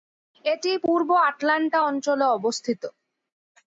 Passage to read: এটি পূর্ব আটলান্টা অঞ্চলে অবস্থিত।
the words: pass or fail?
pass